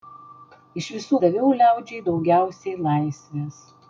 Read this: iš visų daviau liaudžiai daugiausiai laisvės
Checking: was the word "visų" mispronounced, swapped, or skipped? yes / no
no